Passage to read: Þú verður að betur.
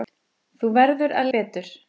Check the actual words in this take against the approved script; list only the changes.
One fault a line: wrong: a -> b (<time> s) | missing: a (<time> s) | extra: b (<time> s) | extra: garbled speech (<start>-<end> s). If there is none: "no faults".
no faults